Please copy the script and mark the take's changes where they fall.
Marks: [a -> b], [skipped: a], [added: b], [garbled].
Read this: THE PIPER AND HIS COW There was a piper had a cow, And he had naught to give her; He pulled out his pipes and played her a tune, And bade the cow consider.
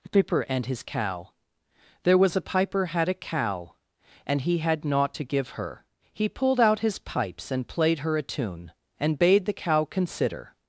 [skipped: THE] PIPER AND HIS COW There was a piper had a cow, And he had naught to give her; He pulled out his pipes and played her a tune, And bade the cow consider.